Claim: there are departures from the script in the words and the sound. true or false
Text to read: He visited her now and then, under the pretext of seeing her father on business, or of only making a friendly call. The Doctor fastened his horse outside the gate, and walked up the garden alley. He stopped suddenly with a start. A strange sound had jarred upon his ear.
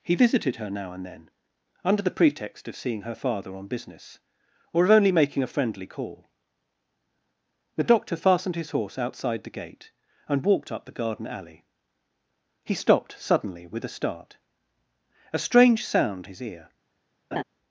true